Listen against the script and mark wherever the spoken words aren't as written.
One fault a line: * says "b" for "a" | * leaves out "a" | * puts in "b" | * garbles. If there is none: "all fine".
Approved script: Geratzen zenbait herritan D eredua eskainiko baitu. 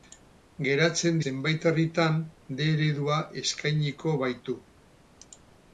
all fine